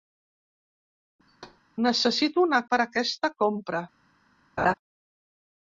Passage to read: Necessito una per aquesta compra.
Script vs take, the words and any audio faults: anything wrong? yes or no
yes